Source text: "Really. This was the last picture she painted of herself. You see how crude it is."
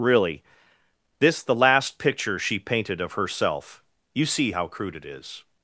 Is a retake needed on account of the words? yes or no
yes